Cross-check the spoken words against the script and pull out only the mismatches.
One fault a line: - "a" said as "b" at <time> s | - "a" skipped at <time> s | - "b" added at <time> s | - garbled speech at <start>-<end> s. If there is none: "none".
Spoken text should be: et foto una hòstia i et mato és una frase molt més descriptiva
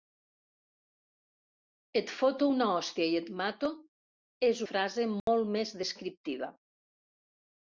- "una" skipped at 4.6 s